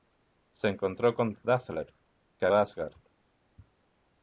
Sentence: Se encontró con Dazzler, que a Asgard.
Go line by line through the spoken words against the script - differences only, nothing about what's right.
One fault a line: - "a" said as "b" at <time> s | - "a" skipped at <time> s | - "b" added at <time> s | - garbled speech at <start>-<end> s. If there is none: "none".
none